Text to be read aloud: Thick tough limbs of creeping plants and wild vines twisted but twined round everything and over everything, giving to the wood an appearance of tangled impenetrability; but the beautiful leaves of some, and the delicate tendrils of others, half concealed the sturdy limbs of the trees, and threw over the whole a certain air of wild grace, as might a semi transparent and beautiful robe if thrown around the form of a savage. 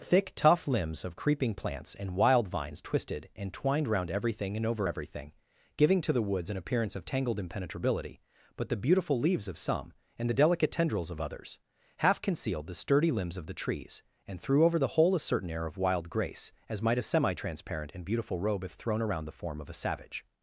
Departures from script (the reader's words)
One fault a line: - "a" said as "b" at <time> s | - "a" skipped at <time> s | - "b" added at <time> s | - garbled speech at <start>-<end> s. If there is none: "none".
- "but" said as "and" at 3.4 s
- "wood" said as "woods" at 6.2 s